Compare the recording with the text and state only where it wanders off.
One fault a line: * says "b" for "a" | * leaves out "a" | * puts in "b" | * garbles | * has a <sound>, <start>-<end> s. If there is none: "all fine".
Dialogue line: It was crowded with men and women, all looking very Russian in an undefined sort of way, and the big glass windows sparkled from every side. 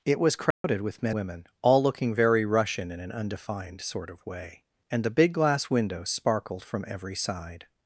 * has a dropout, 0.5-0.6 s
* leaves out "and"